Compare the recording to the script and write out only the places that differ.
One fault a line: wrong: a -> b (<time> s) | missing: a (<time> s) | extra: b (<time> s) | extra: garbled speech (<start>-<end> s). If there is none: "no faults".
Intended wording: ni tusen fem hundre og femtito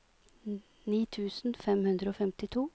no faults